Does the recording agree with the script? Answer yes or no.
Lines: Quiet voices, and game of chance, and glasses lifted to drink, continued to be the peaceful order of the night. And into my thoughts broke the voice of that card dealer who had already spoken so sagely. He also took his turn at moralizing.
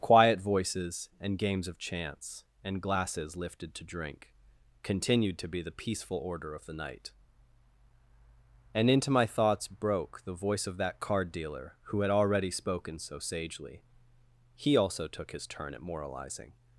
no